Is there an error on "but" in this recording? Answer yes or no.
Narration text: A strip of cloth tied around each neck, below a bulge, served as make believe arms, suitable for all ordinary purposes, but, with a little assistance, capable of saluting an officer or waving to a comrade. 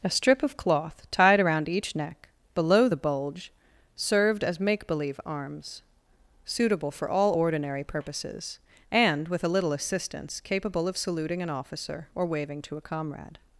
yes